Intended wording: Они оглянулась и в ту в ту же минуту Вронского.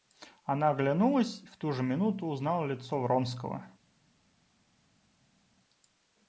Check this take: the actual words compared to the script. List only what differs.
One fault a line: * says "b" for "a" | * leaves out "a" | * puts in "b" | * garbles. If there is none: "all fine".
* says "Она" for "Они"
* says "же минуту узнала лицо" for "в ту же минуту"